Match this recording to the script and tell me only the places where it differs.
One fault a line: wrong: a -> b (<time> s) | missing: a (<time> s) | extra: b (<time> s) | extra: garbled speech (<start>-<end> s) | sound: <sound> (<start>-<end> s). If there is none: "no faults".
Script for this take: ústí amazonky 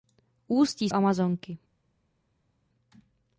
no faults